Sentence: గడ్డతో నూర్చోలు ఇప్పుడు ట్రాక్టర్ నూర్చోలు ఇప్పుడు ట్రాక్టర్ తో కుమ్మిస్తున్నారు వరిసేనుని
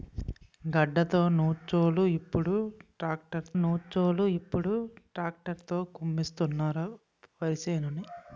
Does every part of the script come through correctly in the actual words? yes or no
yes